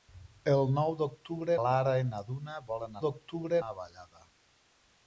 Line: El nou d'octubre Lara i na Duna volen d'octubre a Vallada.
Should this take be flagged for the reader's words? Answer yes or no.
no